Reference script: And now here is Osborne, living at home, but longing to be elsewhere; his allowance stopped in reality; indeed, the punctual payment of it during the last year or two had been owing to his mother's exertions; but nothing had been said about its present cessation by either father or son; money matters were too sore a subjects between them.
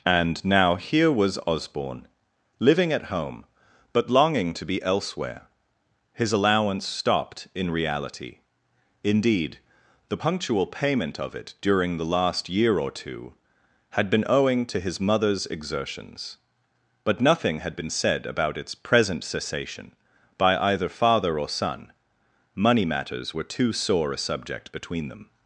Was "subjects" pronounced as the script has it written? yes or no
no